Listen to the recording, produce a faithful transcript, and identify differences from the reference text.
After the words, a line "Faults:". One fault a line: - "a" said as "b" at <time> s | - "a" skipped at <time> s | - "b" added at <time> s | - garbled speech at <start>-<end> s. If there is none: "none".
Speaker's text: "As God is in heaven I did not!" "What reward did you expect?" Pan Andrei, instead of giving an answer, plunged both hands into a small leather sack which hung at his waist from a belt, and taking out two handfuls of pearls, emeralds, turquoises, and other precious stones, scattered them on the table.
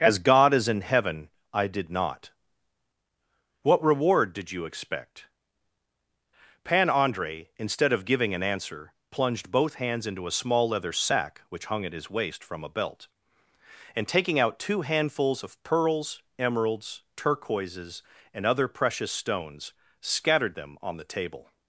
"As God is in heaven I did not!" "What reward did you expect?" Pan Andrei, instead of giving an answer, plunged both hands into a small leather sack which hung at his waist from a belt, and taking out two handfuls of pearls, emeralds, turquoises, and other precious stones, scattered them on the table.
Faults:
none